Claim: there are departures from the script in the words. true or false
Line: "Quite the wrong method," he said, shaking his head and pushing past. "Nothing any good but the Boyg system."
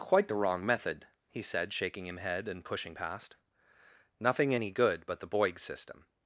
true